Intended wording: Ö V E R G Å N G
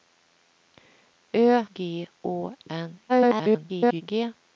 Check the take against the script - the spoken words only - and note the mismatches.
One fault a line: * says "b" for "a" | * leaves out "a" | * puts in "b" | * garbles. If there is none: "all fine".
* leaves out "V E R"
* garbles